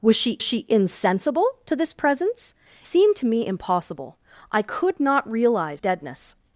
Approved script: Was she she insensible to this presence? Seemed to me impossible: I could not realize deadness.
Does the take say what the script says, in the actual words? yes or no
yes